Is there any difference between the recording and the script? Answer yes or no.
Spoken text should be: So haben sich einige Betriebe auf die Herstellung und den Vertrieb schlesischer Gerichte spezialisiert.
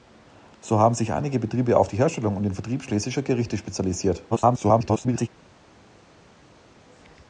yes